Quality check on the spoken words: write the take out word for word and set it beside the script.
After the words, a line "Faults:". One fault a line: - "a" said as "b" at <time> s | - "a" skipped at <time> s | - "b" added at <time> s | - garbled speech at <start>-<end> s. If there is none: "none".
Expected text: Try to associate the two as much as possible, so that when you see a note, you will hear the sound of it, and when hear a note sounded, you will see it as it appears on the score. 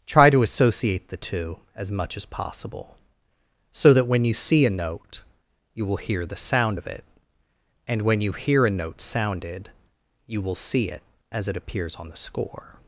Try to associate the two as much as possible, so that when you see a note, you will hear the sound of it, and when you hear a note sounded, you will see it as it appears on the score.
Faults:
- "you" added at 8.2 s